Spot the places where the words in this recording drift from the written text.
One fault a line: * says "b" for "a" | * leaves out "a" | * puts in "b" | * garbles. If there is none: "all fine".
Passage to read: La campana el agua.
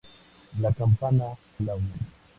all fine